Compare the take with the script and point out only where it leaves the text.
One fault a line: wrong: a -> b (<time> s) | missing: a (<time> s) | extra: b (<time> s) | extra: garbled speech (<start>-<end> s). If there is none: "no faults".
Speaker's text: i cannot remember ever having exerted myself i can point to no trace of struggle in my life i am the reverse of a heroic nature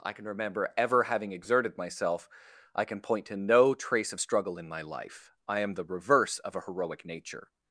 wrong: cannot -> can (0.1 s)